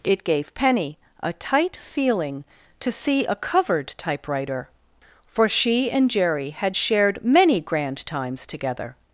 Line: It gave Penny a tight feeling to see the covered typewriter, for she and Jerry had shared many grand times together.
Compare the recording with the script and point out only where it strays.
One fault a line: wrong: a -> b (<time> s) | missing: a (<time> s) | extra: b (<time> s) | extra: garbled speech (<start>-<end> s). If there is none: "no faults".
wrong: the -> a (3.2 s)